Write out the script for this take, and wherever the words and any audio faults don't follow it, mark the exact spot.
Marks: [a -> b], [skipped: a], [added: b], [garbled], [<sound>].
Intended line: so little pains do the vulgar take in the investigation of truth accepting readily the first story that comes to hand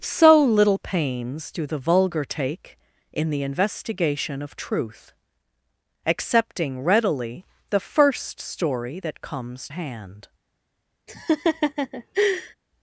so little pains do the vulgar take in the investigation of truth accepting readily the first story that comes [skipped: to] hand [laugh]